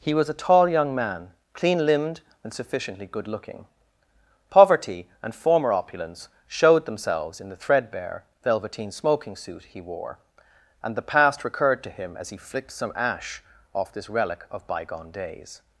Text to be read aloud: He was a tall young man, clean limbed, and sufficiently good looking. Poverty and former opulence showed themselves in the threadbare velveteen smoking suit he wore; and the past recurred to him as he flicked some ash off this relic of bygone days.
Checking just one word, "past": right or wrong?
right